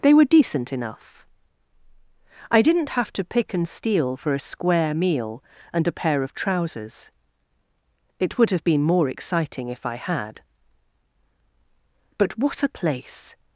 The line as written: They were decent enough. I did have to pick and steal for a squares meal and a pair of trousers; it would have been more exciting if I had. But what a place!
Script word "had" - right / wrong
right